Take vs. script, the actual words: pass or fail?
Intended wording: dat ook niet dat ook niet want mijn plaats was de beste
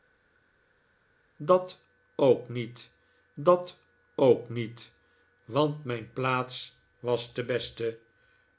pass